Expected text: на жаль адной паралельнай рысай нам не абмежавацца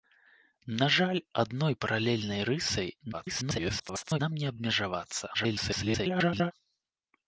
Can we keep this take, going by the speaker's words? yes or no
no